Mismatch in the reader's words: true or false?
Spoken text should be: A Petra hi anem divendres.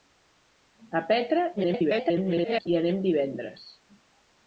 true